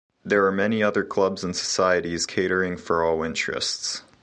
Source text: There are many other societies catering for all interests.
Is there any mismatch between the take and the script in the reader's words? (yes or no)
yes